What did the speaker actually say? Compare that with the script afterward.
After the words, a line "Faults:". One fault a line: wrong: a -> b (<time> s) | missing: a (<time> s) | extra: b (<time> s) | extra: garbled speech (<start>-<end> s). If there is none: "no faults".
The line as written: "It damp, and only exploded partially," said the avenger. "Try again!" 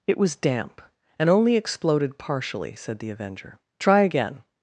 "It was damp, and only exploded partially," said the avenger. "Try again!"
Faults:
extra: was (0.2 s)